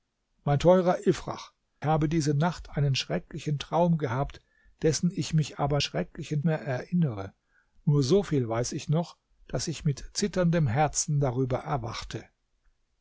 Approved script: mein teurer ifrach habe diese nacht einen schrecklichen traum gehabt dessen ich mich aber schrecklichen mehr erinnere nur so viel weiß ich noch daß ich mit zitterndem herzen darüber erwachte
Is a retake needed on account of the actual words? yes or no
no